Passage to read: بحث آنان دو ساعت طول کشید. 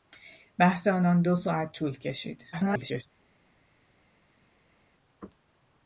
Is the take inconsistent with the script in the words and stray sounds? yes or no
yes